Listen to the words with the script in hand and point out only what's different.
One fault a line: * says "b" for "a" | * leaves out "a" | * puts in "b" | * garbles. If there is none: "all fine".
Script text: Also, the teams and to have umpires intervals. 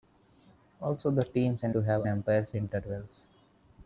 all fine